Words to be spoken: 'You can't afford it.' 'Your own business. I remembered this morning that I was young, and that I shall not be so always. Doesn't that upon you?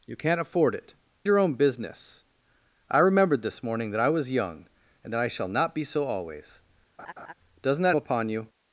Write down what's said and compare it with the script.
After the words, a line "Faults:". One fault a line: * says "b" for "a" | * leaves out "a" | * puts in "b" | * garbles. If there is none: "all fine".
'You can't afford it.' 'Your own business. I remembered this morning that I was young, and that I shall not be so always. Doesn't that upon you?
Faults:
all fine